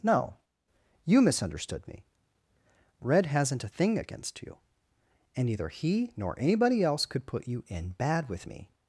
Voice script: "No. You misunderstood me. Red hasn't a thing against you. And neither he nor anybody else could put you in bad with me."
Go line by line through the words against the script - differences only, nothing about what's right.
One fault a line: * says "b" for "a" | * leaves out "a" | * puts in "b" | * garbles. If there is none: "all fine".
all fine